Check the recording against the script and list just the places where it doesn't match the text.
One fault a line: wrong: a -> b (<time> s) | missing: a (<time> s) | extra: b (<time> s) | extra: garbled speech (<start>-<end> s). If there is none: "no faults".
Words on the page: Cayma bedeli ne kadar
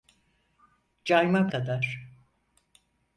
missing: bedeli ne (1.5 s)